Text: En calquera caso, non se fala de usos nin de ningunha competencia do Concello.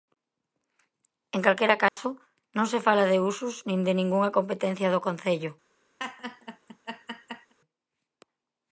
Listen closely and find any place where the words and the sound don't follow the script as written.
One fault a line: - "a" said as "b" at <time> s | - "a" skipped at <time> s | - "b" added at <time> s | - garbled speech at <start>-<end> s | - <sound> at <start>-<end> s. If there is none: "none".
- dropout at 1.9-2.0 s
- laugh at 6.0-7.5 s